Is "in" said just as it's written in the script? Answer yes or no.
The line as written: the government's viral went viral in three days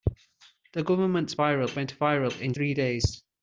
yes